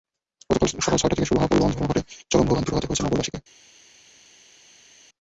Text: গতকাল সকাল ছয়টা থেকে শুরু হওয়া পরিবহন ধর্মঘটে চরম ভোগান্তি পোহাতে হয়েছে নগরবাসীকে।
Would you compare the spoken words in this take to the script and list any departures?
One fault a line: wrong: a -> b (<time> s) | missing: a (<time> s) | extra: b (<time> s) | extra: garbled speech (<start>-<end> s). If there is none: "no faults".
no faults